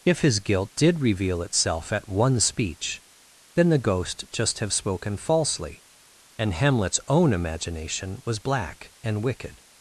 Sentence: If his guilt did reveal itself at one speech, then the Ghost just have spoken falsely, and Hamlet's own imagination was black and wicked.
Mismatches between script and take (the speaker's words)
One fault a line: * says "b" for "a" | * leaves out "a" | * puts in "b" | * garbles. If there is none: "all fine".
all fine